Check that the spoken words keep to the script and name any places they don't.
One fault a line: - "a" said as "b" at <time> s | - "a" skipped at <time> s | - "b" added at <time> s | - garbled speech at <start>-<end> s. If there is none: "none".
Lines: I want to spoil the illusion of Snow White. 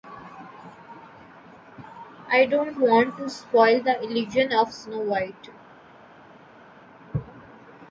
- "don't" added at 2.5 s